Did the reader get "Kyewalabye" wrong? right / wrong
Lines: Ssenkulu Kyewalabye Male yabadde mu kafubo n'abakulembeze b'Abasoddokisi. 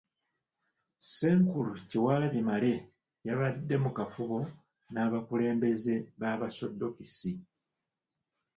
right